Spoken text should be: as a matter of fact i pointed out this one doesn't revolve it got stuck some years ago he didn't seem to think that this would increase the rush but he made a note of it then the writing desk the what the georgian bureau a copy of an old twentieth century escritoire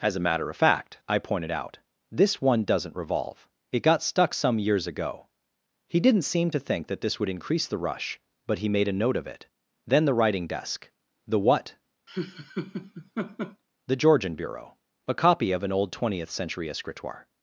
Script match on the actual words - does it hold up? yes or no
yes